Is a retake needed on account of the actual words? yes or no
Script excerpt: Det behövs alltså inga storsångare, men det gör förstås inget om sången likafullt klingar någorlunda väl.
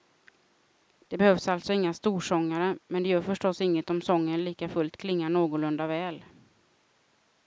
no